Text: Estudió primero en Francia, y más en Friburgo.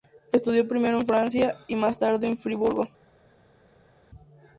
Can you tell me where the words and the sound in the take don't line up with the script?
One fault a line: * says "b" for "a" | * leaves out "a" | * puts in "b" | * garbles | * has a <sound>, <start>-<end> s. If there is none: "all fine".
* puts in "tarde"